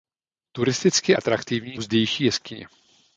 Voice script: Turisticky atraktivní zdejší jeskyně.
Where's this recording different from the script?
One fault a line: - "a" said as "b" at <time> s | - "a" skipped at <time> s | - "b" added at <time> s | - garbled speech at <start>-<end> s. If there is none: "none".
none